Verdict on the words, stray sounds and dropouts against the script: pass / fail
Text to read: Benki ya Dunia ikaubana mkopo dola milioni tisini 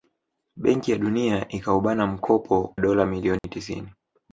fail